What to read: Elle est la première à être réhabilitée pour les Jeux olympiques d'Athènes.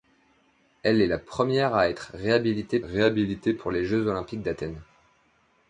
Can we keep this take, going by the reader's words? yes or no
no